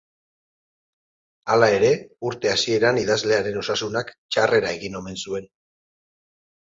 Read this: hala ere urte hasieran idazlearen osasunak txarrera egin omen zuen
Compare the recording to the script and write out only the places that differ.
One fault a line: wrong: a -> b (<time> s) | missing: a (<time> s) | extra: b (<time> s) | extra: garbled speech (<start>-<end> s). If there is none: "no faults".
no faults